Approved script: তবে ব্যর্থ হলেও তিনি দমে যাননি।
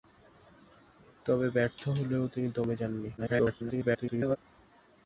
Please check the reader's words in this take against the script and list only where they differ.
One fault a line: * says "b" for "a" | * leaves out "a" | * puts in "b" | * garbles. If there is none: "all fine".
* garbles